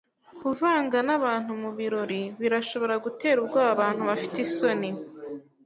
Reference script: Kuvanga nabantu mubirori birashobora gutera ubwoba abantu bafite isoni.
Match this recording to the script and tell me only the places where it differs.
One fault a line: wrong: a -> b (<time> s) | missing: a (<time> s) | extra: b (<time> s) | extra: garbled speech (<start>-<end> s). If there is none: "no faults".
no faults